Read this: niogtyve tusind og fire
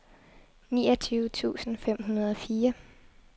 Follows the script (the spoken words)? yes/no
no